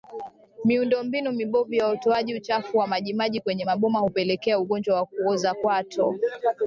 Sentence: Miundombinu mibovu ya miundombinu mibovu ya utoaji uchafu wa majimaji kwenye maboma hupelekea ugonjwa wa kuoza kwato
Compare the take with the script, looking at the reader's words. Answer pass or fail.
fail